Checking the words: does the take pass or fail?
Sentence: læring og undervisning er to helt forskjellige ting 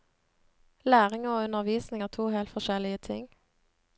pass